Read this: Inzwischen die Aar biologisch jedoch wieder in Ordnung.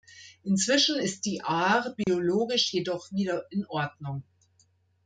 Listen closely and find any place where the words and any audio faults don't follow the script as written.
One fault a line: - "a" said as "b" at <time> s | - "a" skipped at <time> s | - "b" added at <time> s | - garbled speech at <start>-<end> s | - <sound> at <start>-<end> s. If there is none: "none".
- "ist" added at 1.0 s
- dropout at 2.0-2.1 s